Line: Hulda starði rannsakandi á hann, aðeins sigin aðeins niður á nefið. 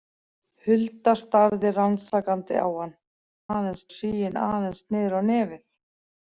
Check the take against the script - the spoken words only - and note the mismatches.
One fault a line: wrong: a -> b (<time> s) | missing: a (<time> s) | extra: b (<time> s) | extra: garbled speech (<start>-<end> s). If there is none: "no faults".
no faults